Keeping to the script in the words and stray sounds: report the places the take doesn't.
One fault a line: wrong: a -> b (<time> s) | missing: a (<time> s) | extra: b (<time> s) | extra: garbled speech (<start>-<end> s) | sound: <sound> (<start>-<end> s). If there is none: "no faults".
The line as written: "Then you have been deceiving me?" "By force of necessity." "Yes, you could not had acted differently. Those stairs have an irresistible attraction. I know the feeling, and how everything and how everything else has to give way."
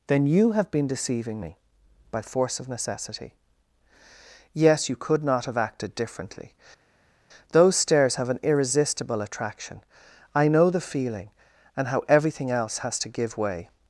wrong: had -> have (5.5 s)
missing: and how everything (12.5 s)